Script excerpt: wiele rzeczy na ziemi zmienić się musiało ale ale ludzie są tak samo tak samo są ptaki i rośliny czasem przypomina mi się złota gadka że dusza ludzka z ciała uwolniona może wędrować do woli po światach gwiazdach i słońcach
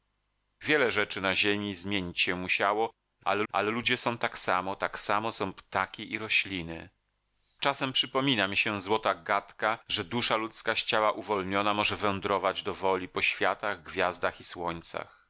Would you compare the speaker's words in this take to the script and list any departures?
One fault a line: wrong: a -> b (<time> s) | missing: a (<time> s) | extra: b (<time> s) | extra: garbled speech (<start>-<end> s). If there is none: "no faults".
no faults